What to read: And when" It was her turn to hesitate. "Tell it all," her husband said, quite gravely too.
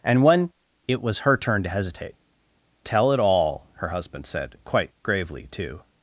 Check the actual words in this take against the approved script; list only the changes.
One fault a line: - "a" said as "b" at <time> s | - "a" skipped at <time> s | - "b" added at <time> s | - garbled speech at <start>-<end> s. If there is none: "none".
none